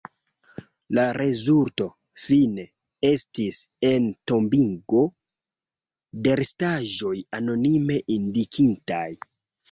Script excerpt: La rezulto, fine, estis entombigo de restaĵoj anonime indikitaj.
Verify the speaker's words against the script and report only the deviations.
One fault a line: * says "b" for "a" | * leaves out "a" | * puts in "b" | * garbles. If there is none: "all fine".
all fine